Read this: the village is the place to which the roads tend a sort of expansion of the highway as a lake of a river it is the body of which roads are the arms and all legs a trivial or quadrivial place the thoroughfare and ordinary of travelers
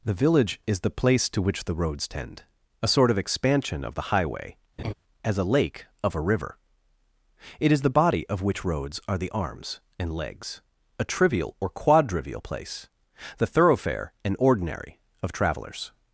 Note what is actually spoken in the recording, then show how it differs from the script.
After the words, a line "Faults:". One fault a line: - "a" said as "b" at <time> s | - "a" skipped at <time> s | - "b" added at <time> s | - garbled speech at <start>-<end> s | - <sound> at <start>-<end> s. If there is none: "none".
the village is the place to which the roads tend a sort of expansion of the highway as a lake of a river it is the body of which roads are the arms and legs a trivial or quadrivial place the thoroughfare and ordinary of travelers
Faults:
- laugh at 4.8-4.9 s
- "all" skipped at 10.1 s